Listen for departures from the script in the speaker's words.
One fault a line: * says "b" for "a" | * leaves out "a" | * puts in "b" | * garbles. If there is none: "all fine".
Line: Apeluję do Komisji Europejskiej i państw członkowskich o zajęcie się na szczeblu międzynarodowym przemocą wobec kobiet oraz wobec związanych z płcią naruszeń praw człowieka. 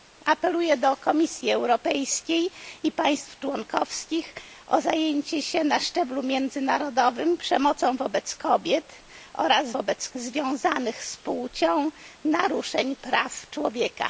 all fine